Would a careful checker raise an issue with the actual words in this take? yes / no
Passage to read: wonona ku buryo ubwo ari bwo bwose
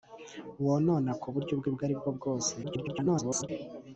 yes